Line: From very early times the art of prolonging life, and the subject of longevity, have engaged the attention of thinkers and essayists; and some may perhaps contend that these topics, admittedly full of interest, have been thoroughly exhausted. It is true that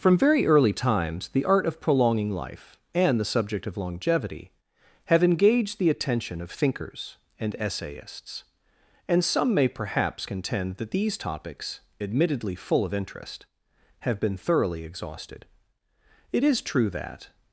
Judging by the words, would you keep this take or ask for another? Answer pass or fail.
pass